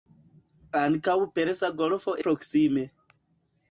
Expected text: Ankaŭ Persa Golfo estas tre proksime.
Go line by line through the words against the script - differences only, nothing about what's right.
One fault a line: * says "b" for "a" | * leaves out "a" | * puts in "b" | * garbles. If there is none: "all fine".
* leaves out "estas tre"